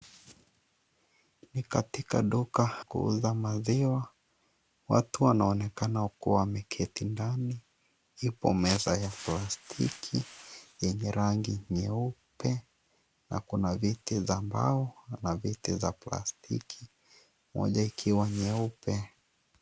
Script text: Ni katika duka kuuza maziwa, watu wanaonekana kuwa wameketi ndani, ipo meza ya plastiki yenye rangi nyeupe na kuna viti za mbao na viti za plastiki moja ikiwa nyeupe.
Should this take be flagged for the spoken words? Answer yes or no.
no